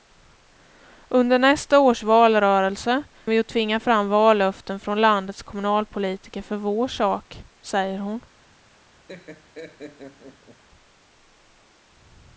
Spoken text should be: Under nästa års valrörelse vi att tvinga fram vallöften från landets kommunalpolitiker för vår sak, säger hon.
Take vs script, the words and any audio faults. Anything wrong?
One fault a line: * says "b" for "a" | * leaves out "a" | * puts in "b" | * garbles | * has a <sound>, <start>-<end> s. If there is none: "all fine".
* has a laugh, 9.1-10.6 s